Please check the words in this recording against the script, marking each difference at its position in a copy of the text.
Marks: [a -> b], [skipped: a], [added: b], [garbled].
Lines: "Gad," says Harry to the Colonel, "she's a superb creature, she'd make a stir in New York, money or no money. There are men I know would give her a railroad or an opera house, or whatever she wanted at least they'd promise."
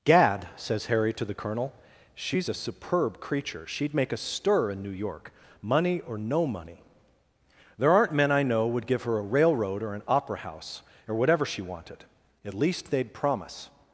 "Gad," says Harry to the Colonel, "she's a superb creature, she'd make a stir in New York, money or no money. There [are -> aren't] men I know would give her a railroad or an opera house, or whatever she wanted at least they'd promise."